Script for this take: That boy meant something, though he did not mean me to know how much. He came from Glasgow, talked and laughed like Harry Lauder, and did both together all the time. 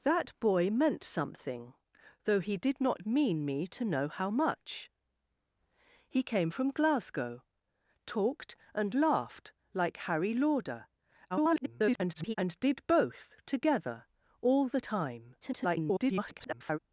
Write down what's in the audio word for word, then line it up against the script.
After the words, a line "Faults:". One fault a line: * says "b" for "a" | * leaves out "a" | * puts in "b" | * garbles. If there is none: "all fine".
That boy meant something, though he did not mean me to know how much. He came from Glasgow, talked and laughed like Harry Lauder, [garbled] and did both together all the time. [garbled]
Faults:
* garbles
* garbles